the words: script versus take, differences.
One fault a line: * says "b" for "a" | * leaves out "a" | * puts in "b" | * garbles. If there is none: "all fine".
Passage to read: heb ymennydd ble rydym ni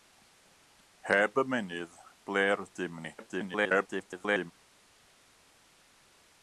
* garbles